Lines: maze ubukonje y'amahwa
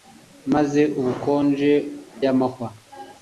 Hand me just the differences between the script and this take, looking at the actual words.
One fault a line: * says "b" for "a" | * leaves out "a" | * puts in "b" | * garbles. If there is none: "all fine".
all fine